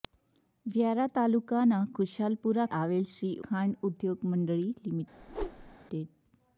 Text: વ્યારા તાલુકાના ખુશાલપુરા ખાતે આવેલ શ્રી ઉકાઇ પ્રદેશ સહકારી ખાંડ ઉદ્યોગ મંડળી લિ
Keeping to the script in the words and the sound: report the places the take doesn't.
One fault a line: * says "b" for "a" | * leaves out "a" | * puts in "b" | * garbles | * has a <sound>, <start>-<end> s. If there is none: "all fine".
* leaves out "ખાતે"
* leaves out "ઉકાઇ પ્રદેશ સહકારી"
* has a whoosh, 5.2-5.8 s